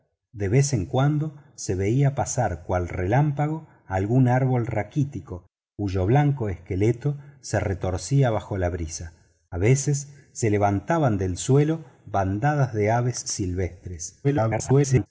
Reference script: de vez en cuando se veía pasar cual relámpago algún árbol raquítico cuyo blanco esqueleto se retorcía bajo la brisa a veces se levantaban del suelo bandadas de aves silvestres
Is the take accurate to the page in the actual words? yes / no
no